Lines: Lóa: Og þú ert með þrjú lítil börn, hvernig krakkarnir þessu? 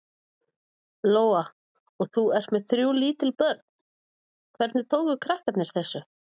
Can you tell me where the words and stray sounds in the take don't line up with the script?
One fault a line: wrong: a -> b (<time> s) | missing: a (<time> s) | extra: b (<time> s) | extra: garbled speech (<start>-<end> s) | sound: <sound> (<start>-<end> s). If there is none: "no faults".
extra: tóku (4.9 s)